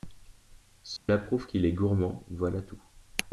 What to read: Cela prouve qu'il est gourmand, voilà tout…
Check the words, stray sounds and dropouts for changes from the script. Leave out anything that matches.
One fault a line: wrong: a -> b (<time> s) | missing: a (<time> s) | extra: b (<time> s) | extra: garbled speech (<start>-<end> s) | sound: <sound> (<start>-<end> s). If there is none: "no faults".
sound: dropout (1.0-1.1 s)